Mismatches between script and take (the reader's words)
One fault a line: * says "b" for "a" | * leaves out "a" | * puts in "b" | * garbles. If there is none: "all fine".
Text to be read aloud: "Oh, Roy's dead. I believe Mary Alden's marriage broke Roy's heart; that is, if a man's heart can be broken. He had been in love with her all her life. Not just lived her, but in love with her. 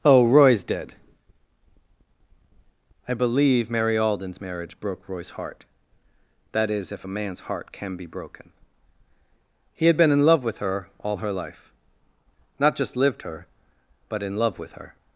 all fine